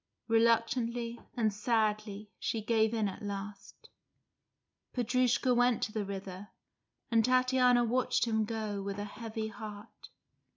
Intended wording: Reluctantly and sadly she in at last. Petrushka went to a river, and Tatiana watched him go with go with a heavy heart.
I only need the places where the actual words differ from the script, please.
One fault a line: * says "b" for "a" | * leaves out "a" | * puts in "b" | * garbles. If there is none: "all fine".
* puts in "gave"
* says "the" for "a"
* leaves out "go with"